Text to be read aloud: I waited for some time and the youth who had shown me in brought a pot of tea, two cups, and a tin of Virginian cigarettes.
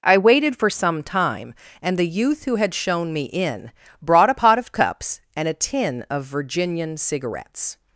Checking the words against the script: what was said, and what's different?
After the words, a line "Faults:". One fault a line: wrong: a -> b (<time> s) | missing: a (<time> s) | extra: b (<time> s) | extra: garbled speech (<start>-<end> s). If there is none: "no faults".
I waited for some time and the youth who had shown me in brought a pot of cups, and a tin of Virginian cigarettes.
Faults:
missing: tea two (4.7 s)